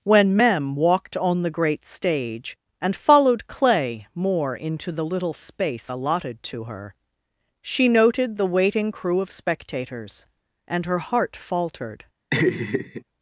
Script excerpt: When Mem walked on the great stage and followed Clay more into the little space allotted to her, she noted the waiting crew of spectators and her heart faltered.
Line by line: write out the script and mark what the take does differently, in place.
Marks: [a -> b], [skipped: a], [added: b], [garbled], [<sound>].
When Mem walked on the great stage and followed Clay more into the little space allotted to her, she noted the waiting crew of spectators and her heart faltered. [laugh]